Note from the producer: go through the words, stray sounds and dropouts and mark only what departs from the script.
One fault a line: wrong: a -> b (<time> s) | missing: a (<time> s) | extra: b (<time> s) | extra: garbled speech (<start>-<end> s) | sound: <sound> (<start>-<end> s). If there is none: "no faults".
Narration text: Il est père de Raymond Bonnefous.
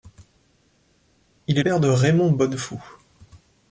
no faults